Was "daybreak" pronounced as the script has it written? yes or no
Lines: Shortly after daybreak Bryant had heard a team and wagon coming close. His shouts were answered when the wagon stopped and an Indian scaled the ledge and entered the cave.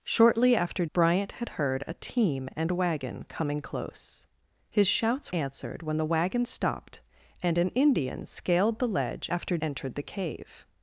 no